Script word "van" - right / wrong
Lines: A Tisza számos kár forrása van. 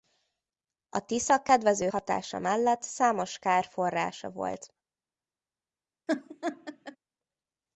wrong